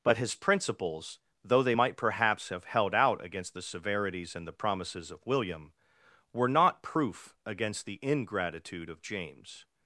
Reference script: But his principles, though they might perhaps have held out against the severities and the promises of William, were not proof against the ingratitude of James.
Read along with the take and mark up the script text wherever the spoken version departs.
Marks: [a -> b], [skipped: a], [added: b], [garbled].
But his principles, though they might perhaps have held out against the severities and the promises of William, were not proof against the ingratitude of James.